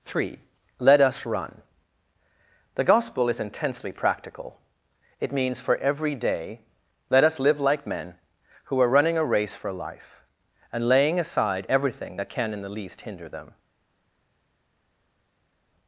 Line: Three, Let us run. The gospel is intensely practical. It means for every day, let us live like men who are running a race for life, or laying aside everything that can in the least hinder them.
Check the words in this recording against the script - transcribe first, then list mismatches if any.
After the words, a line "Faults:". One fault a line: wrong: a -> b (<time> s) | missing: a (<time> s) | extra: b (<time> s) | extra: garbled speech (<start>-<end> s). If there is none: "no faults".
Three, Let us run. The gospel is intensely practical. It means for every day, let us live like men who are running a race for life, and laying aside everything that can in the least hinder them.
Faults:
wrong: or -> and (10.7 s)